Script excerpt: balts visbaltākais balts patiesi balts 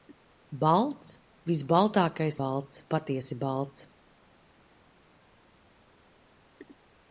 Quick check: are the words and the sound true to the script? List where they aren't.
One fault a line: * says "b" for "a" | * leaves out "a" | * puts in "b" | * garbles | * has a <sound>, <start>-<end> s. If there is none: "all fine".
all fine